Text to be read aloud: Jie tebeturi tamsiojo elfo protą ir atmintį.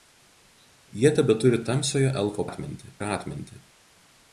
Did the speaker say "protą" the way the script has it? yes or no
no